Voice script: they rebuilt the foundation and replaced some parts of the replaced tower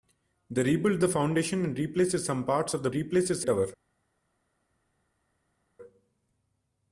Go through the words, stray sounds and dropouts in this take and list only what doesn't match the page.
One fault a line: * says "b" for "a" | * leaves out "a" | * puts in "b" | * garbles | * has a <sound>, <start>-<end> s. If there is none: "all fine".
all fine